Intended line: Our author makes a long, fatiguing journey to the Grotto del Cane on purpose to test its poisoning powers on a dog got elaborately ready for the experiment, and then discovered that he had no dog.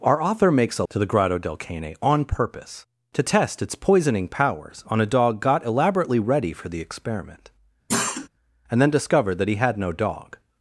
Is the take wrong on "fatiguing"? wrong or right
wrong